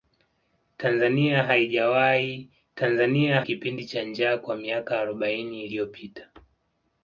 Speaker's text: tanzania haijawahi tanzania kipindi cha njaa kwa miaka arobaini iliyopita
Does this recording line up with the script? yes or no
yes